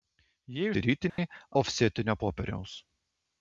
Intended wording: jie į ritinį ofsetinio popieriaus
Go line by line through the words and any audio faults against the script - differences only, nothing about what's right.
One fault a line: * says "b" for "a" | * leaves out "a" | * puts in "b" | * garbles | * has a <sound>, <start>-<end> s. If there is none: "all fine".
* has a dropout, 1.1-1.2 s